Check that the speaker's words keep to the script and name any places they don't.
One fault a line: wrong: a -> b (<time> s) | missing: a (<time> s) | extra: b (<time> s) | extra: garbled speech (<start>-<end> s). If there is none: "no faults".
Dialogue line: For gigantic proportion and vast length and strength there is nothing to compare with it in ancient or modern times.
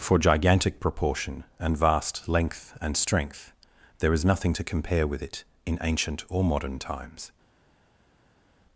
no faults